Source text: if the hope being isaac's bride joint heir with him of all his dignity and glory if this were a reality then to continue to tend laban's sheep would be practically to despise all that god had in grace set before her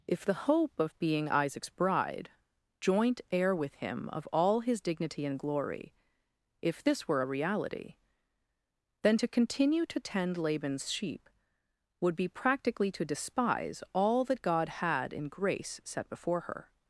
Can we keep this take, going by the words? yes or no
no